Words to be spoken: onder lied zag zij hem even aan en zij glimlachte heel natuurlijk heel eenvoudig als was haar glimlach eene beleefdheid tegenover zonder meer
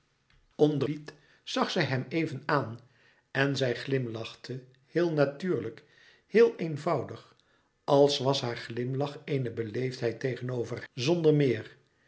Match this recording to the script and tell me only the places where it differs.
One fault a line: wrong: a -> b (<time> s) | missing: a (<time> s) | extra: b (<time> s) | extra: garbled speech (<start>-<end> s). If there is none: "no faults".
no faults